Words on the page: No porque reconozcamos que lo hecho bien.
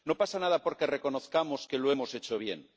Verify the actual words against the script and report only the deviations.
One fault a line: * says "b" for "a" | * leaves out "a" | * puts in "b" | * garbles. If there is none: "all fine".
* puts in "pasa nada"
* puts in "hemos"